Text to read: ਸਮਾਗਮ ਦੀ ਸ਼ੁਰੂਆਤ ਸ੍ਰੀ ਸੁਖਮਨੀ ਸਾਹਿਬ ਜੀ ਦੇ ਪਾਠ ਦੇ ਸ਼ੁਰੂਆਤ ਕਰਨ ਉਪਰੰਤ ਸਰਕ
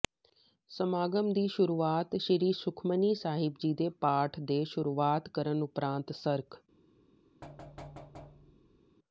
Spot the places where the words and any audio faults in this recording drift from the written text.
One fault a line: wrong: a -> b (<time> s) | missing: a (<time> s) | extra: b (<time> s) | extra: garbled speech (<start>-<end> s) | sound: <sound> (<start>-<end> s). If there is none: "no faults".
sound: thud (7.4-8.8 s)